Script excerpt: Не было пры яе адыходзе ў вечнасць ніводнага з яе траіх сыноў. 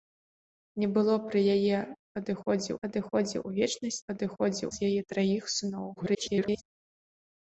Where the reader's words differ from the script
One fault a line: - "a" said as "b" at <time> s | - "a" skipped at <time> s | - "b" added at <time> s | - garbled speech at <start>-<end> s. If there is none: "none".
- "адыходзе" added at 2.9 s
- "ніводнага" said as "адыходзе" at 4.1 s
- garbled speech at 6.0-6.6 s